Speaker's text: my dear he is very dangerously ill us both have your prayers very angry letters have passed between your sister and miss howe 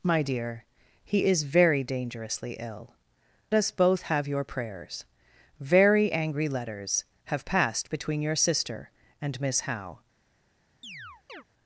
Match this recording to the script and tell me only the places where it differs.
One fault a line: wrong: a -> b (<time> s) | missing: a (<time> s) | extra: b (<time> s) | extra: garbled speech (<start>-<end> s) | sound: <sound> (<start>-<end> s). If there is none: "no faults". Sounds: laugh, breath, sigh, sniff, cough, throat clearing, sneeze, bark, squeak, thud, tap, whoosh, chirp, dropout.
sound: chirp (10.8-11.4 s)